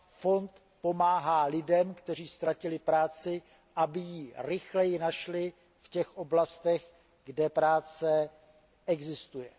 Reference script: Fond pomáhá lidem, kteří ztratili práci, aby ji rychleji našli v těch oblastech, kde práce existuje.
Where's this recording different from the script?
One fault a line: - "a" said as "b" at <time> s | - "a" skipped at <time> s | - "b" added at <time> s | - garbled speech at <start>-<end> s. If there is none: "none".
none